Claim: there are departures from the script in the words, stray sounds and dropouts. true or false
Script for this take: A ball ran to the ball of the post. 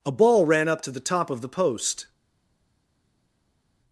true